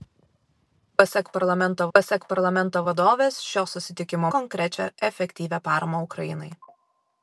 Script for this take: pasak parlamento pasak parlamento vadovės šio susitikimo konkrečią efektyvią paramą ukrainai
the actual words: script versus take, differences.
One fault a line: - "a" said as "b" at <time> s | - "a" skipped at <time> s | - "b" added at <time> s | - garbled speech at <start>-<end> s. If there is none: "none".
none